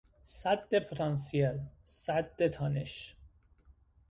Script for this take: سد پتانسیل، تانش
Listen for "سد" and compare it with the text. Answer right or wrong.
right